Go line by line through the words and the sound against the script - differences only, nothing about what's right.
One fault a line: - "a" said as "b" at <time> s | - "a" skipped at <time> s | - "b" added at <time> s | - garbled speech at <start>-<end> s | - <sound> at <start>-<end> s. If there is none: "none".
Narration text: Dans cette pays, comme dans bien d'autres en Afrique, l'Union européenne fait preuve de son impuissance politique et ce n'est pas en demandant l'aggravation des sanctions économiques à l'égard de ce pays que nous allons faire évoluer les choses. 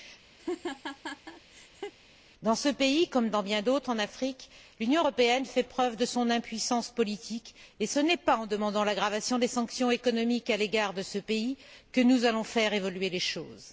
- laugh at 0.4-1.9 s
- "cette" said as "ce" at 2.5 s